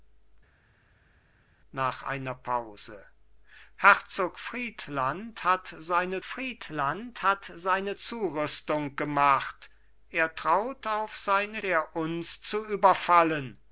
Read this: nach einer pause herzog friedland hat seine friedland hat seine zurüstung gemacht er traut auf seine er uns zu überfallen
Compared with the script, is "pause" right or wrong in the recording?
right